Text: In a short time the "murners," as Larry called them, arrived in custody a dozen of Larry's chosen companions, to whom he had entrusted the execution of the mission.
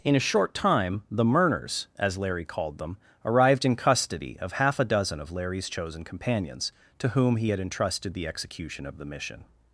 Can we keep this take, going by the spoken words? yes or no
no